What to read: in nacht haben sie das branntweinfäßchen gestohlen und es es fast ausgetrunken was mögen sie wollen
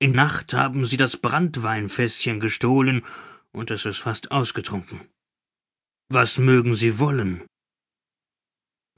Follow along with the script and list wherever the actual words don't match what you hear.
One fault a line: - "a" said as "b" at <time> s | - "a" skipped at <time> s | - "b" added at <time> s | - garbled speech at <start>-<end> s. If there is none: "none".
none